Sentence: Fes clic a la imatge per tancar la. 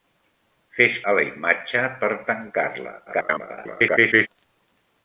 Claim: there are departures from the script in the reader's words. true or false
true